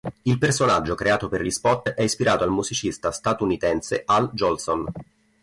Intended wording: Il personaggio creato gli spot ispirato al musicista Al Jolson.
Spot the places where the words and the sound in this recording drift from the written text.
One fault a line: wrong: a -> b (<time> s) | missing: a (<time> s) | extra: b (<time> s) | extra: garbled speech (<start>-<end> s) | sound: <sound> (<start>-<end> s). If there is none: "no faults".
extra: per (1.3 s)
extra: è (1.9 s)
extra: statunitense (3.1 s)